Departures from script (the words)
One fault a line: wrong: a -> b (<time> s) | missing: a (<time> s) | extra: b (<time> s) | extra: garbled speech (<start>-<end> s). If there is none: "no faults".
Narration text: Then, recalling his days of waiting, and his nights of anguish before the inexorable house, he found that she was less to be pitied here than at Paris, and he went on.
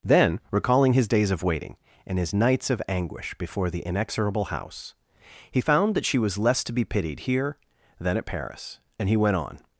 no faults